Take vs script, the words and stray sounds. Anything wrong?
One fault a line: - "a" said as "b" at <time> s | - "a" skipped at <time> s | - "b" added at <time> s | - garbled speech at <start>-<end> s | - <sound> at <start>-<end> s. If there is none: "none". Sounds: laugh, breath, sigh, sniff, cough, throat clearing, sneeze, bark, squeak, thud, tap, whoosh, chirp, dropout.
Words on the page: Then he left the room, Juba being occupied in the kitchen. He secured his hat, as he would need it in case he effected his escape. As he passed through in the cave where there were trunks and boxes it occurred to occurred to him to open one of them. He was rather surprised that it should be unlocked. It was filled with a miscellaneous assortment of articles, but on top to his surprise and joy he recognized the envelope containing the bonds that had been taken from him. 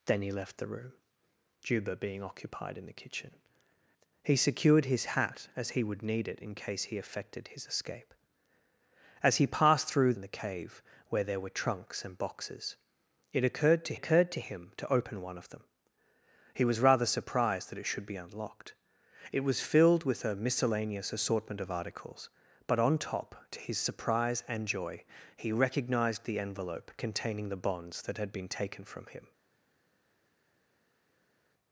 none